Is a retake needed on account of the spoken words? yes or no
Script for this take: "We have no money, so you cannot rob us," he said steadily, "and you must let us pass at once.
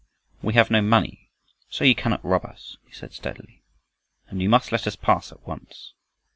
no